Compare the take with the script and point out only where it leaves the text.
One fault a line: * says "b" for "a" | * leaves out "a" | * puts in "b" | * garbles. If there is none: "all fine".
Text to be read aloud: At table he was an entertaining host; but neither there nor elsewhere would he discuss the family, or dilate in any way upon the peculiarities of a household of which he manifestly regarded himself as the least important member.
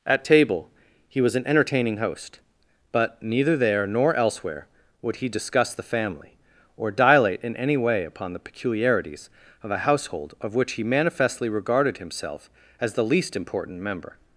all fine